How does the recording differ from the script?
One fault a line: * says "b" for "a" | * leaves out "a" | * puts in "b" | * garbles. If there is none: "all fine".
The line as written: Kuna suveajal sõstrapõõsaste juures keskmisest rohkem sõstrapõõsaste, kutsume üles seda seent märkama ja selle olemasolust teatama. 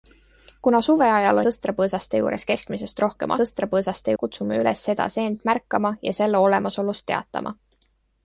all fine